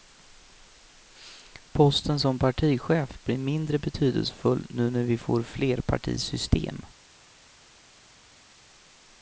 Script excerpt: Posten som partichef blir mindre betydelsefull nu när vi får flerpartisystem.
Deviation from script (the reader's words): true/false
false